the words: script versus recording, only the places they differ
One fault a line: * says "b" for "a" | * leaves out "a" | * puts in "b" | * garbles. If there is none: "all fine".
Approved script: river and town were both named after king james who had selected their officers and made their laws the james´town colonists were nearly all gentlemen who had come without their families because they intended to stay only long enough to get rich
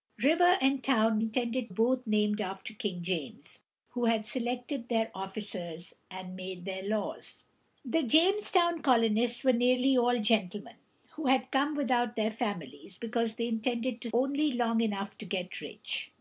* says "intended" for "were"
* leaves out "stay"